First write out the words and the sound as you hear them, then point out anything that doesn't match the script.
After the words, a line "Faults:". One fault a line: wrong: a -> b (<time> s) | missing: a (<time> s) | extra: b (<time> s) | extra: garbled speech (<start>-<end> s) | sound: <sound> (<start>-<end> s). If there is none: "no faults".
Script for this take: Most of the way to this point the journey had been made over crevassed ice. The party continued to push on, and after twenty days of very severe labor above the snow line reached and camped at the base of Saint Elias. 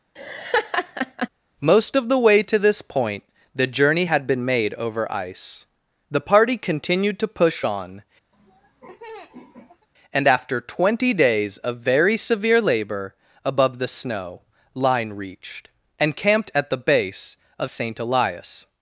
Most of the way to this point the journey had been made over ice. The party continued to push on, and after twenty days of very severe labor above the snow line reached and camped at the base of Saint Elias.
Faults:
sound: laugh (0.2-1.3 s)
missing: crevassed (5.1 s)
sound: laugh (8.3-9.9 s)